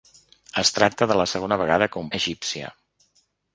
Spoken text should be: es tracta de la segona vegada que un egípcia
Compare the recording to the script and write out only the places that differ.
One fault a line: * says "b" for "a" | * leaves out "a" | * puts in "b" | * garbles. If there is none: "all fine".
all fine